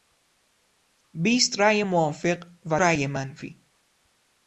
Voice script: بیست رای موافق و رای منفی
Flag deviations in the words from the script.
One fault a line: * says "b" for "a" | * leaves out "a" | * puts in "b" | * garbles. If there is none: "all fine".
all fine